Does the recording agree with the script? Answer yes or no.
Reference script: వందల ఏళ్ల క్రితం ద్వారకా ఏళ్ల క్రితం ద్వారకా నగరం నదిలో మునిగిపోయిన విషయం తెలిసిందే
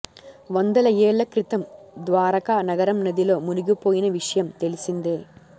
no